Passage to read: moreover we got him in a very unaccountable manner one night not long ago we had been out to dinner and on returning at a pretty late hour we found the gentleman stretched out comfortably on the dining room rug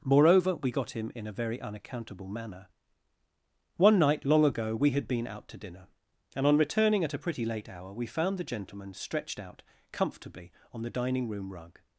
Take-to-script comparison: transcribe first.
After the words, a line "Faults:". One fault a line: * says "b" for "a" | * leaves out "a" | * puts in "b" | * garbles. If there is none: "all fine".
moreover we got him in a very unaccountable manner one night long ago we had been out to dinner and on returning at a pretty late hour we found the gentleman stretched out comfortably on the dining room rug
Faults:
* leaves out "not"